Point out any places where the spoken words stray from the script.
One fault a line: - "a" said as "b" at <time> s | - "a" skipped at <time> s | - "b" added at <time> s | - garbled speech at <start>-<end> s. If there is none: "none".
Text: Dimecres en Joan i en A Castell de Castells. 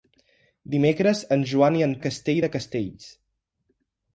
none